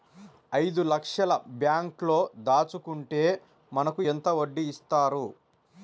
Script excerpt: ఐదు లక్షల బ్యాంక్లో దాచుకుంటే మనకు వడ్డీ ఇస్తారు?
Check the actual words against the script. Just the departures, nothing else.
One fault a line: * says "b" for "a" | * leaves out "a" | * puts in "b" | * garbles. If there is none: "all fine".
* puts in "ఎంత"